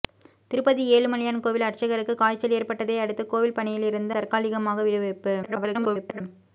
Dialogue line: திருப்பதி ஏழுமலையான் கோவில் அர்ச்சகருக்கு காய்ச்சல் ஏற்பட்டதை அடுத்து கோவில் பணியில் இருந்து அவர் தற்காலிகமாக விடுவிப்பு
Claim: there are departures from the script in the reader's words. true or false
true